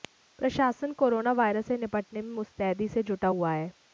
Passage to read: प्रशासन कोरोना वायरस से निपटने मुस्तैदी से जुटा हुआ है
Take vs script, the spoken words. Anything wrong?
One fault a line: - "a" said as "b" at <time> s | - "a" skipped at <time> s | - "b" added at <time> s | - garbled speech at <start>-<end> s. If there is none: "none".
- "में" added at 2.2 s